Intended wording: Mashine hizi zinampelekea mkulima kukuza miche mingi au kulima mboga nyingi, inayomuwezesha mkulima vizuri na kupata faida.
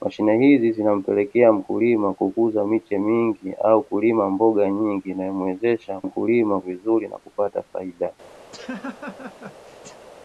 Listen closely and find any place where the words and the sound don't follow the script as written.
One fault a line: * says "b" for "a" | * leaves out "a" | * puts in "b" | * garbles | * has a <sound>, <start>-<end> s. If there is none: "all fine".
* has a laugh, 8.5-10.1 s